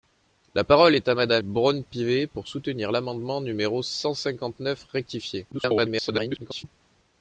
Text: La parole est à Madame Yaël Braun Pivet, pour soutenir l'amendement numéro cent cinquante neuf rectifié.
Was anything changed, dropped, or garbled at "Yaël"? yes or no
yes